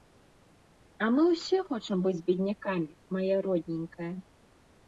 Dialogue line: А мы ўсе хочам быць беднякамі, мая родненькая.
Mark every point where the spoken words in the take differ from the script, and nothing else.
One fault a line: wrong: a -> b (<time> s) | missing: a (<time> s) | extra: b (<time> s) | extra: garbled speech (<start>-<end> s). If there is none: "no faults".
no faults